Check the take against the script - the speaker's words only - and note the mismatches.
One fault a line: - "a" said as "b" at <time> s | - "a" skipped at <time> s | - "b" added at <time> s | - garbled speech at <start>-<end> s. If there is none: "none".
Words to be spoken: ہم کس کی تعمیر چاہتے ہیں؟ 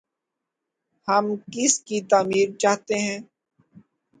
none